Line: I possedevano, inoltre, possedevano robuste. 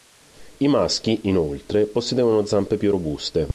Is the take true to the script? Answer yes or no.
no